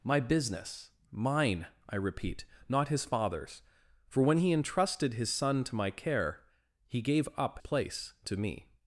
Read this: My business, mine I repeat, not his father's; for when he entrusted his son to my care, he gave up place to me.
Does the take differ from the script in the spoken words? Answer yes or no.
no